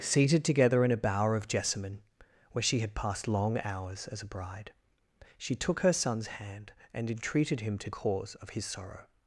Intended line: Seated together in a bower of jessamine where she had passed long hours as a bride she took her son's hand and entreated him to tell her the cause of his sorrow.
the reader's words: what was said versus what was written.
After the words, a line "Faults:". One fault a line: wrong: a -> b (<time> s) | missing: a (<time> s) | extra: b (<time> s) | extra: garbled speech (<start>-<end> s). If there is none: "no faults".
Seated together in a bower of jessamine where she had passed long hours as a bride she took her son's hand and entreated him to cause of his sorrow.
Faults:
missing: tell her the (7.9 s)